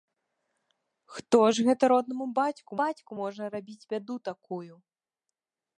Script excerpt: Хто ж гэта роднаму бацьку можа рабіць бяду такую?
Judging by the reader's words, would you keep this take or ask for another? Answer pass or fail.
fail